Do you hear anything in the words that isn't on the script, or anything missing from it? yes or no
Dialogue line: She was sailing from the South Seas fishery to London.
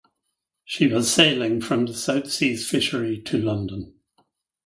no